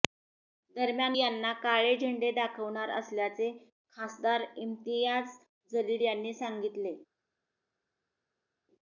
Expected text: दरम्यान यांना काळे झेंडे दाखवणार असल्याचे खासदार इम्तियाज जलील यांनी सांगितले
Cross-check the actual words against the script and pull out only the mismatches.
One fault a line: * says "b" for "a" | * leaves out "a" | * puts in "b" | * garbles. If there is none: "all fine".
all fine